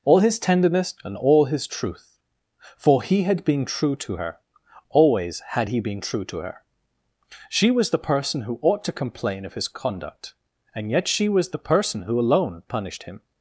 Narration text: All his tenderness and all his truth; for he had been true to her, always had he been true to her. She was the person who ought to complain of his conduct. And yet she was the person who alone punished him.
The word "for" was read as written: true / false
true